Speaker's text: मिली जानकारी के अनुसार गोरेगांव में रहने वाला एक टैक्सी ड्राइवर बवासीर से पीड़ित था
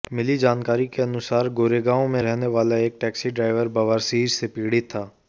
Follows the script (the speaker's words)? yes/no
yes